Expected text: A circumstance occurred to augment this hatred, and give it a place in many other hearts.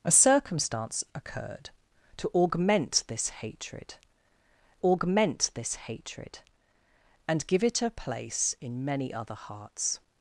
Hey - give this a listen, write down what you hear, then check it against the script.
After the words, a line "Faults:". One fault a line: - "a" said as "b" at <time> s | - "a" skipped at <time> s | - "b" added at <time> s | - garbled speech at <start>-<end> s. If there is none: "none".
A circumstance occurred to augment this hatred augment this hatred, and give it a place in many other hearts.
Faults:
- "augment this hatred" added at 4.8 s